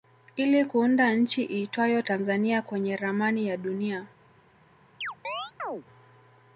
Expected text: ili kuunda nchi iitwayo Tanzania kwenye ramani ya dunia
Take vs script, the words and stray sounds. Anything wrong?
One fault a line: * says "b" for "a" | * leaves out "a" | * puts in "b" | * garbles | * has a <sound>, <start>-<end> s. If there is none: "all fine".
* has a chirp, 5.0-5.8 s